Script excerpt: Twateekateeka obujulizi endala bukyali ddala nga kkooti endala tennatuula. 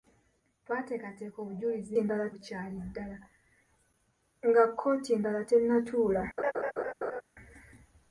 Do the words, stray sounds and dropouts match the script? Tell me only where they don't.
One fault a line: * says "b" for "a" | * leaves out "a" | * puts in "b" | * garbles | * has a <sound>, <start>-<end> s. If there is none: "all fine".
* has a laugh, 6.4-7.2 s